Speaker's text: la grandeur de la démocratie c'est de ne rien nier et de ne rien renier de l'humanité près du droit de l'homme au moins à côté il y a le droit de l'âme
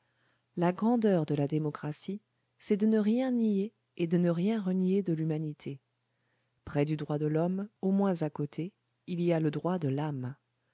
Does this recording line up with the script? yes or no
yes